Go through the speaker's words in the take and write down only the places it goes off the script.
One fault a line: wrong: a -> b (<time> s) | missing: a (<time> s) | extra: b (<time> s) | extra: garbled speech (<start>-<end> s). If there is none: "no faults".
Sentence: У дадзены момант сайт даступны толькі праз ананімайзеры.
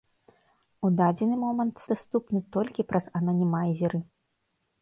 missing: сайт (1.8 s)